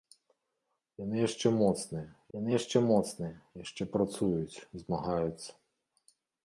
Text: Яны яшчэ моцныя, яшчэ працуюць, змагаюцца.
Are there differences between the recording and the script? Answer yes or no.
yes